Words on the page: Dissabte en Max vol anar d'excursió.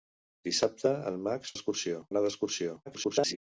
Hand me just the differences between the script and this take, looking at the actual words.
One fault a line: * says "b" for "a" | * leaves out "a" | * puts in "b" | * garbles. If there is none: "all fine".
* says "d'excursió" for "vol"
* garbles